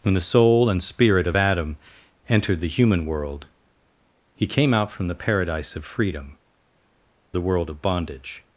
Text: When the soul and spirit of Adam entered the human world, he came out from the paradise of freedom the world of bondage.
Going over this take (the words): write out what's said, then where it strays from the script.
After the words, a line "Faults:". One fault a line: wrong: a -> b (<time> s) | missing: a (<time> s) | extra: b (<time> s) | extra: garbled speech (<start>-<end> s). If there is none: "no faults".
When the soul and spirit of Adam entered the human world, he came out from the paradise of freedom the world of bondage.
Faults:
no faults